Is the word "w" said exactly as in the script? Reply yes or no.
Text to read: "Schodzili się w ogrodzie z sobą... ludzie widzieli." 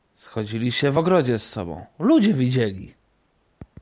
yes